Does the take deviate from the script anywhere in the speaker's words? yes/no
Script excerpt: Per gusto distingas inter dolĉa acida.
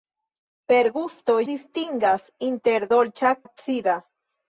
no